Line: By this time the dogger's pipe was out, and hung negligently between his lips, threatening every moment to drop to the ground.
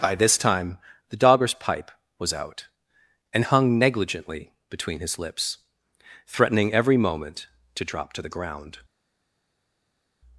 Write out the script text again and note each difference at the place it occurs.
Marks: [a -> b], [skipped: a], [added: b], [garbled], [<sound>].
By this time the dogger's pipe was out, and hung negligently between his lips, threatening every moment to drop to the ground.